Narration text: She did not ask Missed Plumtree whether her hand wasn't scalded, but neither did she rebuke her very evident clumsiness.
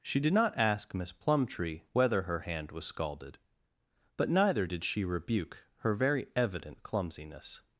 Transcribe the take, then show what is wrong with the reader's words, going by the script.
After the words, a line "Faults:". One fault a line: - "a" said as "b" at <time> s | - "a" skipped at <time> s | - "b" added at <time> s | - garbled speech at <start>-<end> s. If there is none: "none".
She did not ask Miss Plumtree whether her hand was scalded, but neither did she rebuke her very evident clumsiness.
Faults:
- "Missed" said as "Miss" at 0.9 s
- "wasn't" said as "was" at 2.7 s